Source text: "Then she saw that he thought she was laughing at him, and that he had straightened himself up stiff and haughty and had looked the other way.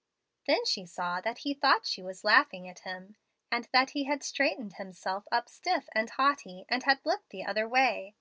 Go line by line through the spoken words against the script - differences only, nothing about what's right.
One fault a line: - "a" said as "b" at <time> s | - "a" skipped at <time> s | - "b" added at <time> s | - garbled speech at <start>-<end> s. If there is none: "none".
none